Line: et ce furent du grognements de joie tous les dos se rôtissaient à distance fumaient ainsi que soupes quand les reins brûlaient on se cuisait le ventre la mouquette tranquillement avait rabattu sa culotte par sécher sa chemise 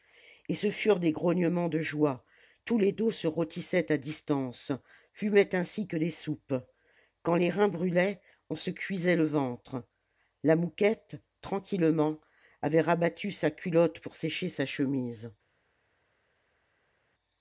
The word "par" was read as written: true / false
false